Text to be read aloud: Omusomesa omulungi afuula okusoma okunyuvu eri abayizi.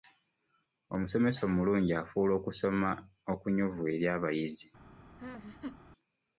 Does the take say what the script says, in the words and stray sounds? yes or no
no